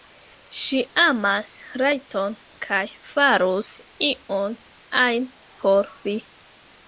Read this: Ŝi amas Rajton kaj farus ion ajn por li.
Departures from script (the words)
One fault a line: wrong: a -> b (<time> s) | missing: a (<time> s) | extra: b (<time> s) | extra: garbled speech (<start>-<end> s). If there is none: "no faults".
no faults